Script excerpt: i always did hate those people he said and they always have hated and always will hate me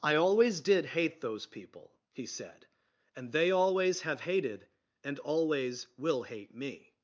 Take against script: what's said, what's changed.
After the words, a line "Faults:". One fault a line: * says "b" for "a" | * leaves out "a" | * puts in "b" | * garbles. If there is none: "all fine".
i always did hate those people he said and they always have hated and always will hate me
Faults:
all fine